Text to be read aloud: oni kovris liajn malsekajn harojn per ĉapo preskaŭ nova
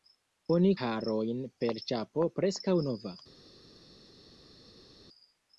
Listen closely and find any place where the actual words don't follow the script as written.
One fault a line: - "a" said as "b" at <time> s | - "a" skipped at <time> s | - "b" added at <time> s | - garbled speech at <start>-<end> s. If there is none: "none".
- "kovris liajn malsekajn" skipped at 0.7 s